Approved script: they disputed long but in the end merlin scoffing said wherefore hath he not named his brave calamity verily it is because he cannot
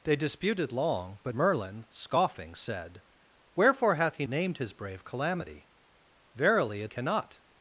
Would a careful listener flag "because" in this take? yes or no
yes